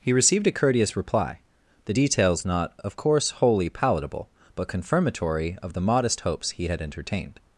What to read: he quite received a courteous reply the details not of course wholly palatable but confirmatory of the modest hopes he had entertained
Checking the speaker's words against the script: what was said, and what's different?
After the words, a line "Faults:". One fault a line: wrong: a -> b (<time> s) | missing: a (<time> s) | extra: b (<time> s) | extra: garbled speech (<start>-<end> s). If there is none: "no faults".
he received a courteous reply the details not of course wholly palatable but confirmatory of the modest hopes he had entertained
Faults:
missing: quite (0.1 s)